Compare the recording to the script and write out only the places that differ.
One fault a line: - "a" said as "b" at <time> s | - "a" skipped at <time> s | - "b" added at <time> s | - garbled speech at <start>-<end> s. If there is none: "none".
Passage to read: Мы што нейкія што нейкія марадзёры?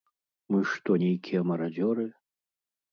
- "што нейкія" skipped at 1.4 s